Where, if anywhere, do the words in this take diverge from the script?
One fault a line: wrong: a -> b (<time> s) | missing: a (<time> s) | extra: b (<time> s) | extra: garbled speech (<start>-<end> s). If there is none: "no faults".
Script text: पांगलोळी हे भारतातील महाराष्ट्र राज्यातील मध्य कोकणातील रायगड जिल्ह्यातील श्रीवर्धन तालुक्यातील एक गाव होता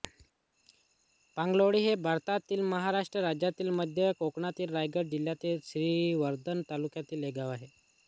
wrong: होता -> आहे (7.5 s)